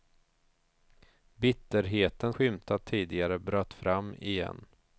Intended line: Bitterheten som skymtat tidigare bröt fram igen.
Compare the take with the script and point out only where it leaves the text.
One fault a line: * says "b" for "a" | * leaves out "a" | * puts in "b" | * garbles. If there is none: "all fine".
* leaves out "som"